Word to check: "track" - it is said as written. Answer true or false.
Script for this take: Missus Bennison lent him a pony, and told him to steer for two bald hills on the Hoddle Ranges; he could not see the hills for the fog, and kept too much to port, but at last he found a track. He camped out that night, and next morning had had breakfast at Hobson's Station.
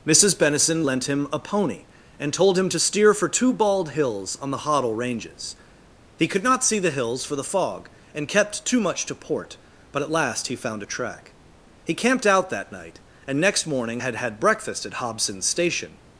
true